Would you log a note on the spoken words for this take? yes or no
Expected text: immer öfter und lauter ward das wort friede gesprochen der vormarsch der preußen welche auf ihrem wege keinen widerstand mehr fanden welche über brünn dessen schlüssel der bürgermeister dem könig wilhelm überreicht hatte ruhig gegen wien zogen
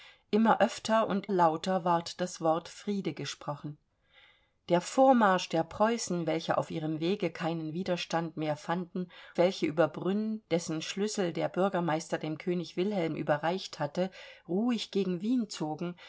no